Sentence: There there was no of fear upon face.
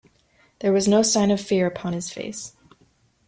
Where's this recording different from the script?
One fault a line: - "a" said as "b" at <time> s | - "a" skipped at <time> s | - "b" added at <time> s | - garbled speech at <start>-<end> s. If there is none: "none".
- "there" skipped at 0.7 s
- "sign" added at 1.0 s
- "his" added at 1.9 s